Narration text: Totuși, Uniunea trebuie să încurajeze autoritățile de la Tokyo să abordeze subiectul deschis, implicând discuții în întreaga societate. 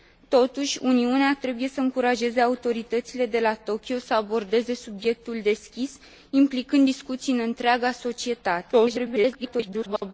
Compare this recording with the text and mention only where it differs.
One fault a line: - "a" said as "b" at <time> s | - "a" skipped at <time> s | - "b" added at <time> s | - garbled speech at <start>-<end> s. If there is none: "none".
- garbled speech at 8.7-10.1 s